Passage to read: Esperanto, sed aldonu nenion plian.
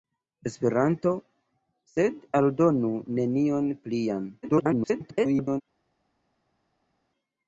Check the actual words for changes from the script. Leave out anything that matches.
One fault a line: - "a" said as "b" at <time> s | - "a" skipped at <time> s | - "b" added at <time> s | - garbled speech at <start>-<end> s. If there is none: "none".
- garbled speech at 4.4-5.6 s